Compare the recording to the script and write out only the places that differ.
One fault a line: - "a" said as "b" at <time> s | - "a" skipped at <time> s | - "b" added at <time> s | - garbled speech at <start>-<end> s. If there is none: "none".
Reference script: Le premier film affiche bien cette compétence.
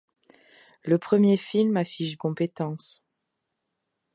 - "bien cette" skipped at 2.2 s